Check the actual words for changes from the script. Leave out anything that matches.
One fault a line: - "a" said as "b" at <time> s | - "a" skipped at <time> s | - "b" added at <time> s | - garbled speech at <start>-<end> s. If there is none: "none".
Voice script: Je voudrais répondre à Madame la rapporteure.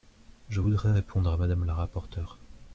none